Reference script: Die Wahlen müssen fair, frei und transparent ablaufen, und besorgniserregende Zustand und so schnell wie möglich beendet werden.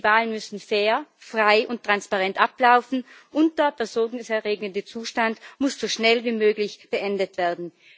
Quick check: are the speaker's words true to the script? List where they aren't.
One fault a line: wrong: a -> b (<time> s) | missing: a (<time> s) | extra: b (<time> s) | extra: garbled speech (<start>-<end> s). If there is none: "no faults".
extra: der (3.6 s)
wrong: und -> muss (5.6 s)